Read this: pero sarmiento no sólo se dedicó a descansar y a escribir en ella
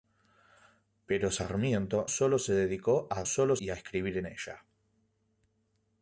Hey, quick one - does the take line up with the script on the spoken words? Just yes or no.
no